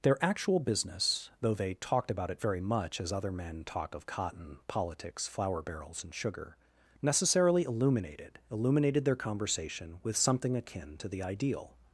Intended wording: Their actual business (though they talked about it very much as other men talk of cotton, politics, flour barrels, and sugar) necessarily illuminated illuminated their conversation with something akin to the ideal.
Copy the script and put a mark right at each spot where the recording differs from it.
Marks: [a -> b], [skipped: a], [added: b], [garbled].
Their actual business (though they talked about it very much as other men talk of cotton, politics, flour barrels, and sugar) necessarily illuminated illuminated their conversation with something akin to the ideal.